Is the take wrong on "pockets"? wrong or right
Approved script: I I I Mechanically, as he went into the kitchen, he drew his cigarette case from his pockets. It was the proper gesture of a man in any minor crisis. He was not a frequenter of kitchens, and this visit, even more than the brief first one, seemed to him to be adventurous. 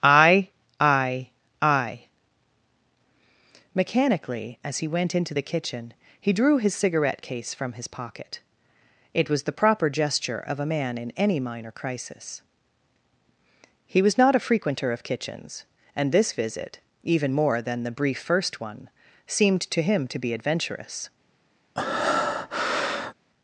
wrong